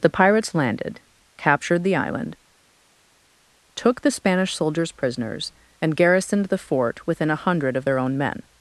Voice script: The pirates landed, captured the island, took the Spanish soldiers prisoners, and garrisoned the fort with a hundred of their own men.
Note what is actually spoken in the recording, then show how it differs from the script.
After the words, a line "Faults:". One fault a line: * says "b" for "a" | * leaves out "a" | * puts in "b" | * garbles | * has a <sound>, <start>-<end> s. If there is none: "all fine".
The pirates landed, captured the island, took the Spanish soldiers prisoners, and garrisoned the fort within a hundred of their own men.
Faults:
* says "within" for "with"